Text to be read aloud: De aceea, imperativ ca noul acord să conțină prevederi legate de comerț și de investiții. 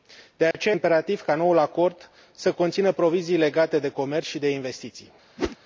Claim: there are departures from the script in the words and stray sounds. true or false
true